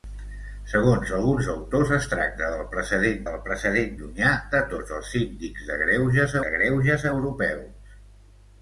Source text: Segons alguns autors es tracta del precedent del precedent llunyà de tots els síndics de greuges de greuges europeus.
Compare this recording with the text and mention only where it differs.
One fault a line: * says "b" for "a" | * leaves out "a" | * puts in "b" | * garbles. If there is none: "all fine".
all fine